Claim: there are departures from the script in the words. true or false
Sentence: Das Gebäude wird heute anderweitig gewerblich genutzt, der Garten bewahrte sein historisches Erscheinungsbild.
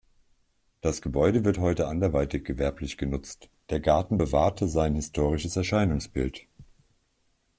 false